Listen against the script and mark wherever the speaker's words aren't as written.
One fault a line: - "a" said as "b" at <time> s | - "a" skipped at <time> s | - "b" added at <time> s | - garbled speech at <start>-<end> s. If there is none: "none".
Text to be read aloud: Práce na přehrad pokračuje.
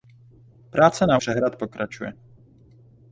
none